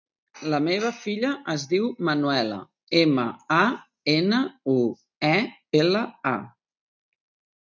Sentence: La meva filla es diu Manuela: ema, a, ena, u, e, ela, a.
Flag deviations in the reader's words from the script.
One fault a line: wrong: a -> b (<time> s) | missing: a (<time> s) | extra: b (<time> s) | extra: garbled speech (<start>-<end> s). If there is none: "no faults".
no faults